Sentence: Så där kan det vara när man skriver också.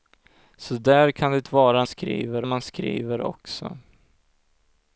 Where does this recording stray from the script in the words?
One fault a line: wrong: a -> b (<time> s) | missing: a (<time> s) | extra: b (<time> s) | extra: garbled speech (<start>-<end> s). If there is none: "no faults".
wrong: när -> skriver (1.8 s)